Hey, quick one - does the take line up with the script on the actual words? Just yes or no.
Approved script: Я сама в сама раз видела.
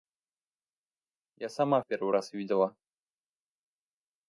no